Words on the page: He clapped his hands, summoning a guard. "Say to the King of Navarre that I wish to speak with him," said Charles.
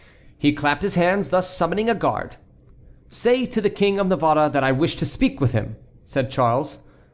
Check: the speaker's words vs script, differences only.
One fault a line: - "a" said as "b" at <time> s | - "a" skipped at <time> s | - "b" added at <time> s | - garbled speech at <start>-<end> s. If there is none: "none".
- "thus" added at 1.3 s